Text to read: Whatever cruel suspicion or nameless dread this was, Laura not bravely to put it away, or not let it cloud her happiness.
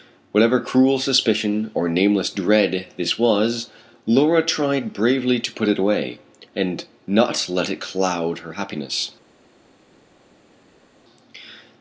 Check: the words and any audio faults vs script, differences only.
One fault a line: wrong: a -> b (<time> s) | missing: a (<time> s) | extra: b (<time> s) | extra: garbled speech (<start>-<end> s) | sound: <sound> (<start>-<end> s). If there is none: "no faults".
wrong: not -> tried (4.4 s)
wrong: or -> and (6.5 s)